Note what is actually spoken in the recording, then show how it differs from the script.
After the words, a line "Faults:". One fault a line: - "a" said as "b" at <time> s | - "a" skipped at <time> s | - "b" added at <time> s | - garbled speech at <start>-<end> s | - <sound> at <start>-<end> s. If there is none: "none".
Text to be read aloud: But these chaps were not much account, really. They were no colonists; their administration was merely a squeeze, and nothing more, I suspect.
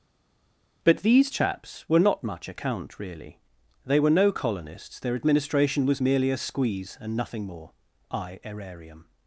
But these chaps were not much account, really. They were no colonists; their administration was merely a squeeze, and nothing more, I aerarium.
Faults:
- "suspect" said as "aerarium" at 8.4 s